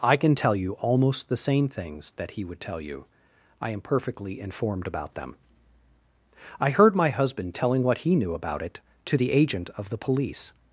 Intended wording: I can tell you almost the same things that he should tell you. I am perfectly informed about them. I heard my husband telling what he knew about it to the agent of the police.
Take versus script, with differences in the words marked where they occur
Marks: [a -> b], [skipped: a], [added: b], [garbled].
I can tell you almost the same things that he [should -> would] tell you. I am perfectly informed about them. I heard my husband telling what he knew about it to the agent of the police.